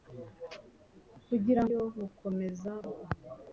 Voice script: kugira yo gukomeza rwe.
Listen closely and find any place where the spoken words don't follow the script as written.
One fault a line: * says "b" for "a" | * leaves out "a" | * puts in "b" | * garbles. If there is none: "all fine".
all fine